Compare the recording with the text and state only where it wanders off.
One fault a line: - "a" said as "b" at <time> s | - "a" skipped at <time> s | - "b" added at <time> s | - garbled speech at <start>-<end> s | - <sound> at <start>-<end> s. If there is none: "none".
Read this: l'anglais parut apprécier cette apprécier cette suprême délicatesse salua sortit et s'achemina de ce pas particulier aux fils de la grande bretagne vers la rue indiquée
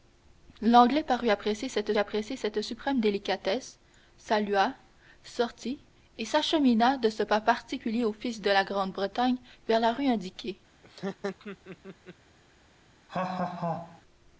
- laugh at 10.8-12.2 s
- laugh at 13.1-14.0 s